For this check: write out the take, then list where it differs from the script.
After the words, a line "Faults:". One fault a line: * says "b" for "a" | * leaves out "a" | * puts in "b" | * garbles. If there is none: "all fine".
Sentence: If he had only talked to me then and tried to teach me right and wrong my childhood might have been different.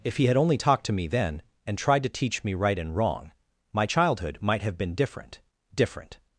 If he had only talked to me then and tried to teach me right and wrong my childhood might have been different different.
Faults:
* puts in "different"